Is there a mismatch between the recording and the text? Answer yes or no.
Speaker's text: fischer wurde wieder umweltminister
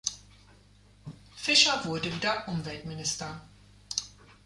no